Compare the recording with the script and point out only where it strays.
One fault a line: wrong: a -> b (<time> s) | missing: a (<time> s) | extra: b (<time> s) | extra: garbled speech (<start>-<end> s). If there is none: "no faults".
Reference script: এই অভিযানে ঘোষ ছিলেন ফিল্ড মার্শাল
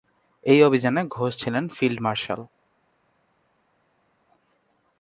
no faults